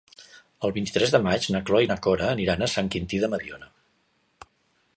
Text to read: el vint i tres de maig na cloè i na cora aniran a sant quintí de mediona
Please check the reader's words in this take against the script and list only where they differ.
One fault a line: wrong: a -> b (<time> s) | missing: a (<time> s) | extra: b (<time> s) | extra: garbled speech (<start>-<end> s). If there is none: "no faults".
no faults